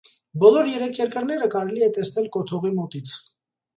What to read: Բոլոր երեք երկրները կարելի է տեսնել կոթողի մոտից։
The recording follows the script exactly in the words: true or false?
true